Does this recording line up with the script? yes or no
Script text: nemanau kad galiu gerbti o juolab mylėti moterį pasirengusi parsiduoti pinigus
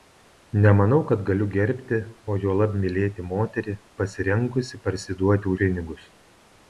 yes